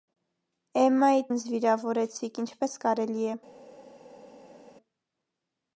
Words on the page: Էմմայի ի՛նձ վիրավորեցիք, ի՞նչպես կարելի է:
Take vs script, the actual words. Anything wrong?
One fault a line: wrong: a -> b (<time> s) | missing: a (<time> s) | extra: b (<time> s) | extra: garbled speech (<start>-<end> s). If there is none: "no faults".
no faults